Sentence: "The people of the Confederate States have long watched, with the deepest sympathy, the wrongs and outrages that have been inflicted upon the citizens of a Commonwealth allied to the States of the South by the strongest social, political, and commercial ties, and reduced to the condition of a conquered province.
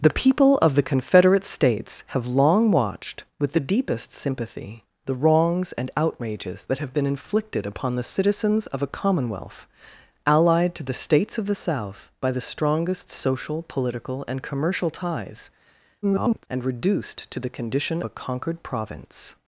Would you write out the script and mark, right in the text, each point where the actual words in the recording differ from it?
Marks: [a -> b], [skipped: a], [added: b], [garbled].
"The people of the Confederate States have long watched, with the deepest sympathy, the wrongs and outrages that have been inflicted upon the citizens of a Commonwealth allied to the States of the South by the strongest social, political, and commercial ties, [garbled] and reduced to the condition [skipped: of] a conquered province.